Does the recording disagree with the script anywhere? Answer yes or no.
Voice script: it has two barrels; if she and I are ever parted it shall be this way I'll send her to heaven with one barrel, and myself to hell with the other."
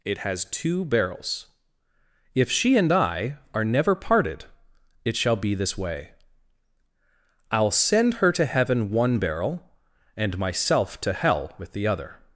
yes